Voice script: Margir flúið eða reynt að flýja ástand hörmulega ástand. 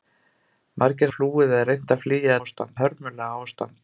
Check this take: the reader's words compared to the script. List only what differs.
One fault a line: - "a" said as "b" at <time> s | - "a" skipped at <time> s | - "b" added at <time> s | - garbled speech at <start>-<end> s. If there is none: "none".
none